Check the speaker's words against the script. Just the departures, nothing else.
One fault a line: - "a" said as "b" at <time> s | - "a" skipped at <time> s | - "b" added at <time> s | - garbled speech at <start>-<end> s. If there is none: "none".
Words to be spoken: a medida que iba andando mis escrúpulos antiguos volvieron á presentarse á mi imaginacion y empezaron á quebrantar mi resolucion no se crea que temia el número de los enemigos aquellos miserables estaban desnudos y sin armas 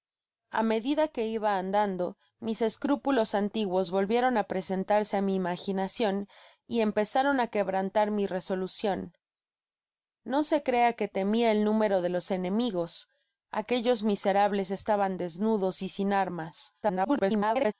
- garbled speech at 16.8-17.7 s